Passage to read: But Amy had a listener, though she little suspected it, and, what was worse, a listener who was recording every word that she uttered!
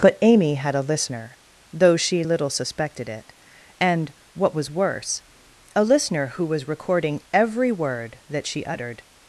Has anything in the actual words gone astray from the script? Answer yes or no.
no